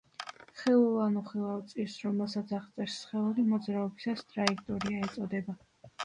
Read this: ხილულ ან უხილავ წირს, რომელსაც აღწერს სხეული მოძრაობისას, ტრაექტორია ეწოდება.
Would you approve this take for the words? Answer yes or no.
yes